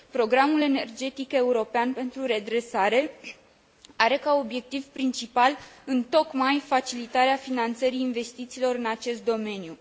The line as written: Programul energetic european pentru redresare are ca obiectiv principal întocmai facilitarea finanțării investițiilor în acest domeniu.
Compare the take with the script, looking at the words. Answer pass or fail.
pass